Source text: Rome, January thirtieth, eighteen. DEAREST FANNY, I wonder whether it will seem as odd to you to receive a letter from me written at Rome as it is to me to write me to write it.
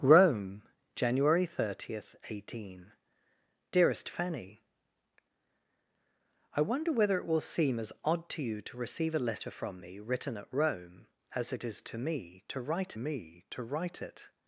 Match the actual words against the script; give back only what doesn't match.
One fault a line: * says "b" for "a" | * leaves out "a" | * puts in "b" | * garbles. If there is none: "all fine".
all fine